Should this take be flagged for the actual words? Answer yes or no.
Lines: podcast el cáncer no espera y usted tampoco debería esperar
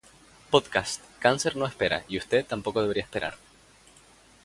yes